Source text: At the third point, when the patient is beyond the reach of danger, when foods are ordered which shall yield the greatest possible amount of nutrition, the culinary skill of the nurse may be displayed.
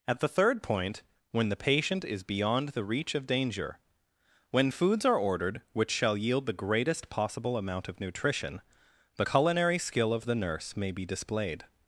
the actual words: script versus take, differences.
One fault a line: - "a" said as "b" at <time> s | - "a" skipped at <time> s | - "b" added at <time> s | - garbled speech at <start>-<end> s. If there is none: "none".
none